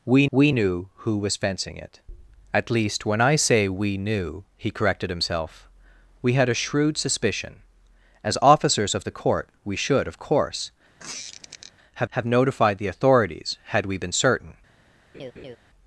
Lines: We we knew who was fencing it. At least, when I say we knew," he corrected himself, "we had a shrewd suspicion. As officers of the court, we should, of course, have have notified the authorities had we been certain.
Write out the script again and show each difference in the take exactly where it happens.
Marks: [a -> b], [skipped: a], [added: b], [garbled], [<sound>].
We we knew who was fencing it. At least, when I say we knew," he corrected himself, "we had a shrewd suspicion. As officers of the court, we should, of course, [squeak] have have notified the authorities had we been certain. [laugh]